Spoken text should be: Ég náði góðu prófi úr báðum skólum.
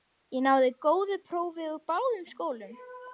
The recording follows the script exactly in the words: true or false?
true